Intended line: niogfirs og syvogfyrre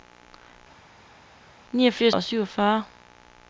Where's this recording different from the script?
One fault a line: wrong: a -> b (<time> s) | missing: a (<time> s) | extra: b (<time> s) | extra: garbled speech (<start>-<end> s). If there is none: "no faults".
no faults